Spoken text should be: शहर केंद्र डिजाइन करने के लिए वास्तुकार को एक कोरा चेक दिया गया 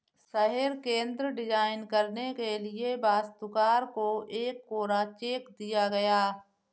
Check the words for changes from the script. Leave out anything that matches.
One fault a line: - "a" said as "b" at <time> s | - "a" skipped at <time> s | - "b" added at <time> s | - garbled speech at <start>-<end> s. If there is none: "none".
none